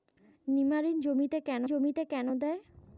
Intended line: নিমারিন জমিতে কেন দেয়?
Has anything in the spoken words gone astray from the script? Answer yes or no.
yes